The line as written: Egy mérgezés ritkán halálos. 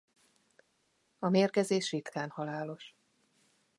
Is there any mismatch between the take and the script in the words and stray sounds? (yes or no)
yes